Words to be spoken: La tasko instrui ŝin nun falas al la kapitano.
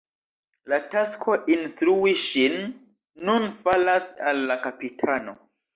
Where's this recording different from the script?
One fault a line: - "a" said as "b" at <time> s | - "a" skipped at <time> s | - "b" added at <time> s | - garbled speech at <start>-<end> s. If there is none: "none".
none